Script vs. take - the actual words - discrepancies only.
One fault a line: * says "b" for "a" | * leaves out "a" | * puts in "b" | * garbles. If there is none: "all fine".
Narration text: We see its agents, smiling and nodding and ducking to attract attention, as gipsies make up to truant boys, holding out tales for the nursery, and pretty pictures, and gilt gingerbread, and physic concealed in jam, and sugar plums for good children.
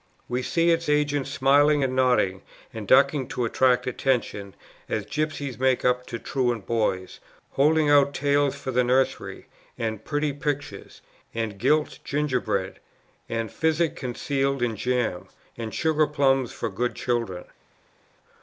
all fine